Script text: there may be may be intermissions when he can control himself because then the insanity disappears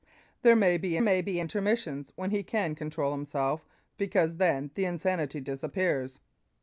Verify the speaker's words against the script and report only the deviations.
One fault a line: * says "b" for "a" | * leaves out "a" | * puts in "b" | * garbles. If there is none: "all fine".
all fine